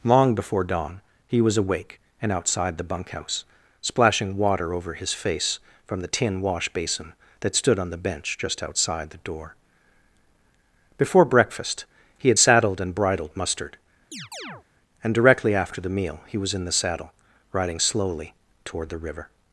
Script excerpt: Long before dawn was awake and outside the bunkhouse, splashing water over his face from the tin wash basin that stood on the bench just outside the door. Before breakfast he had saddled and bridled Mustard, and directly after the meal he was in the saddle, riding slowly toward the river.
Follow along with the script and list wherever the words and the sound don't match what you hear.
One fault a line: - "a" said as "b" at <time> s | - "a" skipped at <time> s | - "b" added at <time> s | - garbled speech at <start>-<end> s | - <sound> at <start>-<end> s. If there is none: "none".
- "he" added at 1.3 s
- chirp at 14.1-14.6 s